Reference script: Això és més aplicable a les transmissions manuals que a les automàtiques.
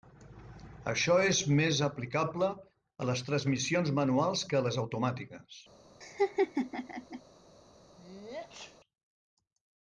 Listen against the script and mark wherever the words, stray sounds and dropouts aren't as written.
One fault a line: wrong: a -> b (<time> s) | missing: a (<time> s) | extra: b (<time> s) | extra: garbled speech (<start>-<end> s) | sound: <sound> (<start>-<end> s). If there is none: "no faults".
sound: laugh (6.0-7.2 s)
sound: sneeze (8.0-8.8 s)